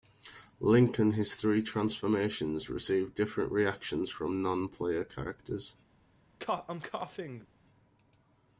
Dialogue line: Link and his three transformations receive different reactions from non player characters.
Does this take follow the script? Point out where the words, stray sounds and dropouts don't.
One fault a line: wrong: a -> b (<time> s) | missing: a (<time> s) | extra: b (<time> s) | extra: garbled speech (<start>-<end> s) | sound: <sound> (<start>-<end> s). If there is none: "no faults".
sound: cough (6.4-7.5 s)